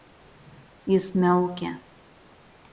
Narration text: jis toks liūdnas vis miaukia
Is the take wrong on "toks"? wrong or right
wrong